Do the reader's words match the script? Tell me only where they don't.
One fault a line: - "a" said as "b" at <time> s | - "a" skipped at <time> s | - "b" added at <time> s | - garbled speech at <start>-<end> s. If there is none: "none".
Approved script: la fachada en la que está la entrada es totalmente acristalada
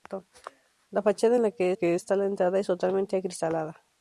- "que" added at 1.7 s